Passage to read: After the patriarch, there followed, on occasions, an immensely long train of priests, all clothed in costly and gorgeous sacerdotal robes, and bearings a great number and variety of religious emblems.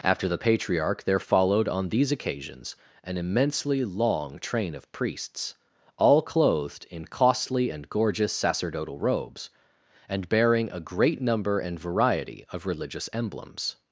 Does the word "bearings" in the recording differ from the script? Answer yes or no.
yes